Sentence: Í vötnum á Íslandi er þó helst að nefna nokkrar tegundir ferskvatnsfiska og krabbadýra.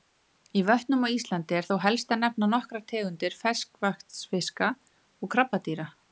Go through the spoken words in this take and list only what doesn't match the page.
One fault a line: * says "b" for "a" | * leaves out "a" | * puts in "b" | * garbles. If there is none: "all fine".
all fine